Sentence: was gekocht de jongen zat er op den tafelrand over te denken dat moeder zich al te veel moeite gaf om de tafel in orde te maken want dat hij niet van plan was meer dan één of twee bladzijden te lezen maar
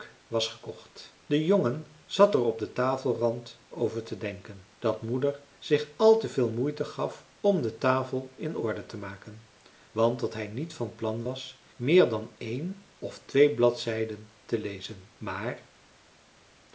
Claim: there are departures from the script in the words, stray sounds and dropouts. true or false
false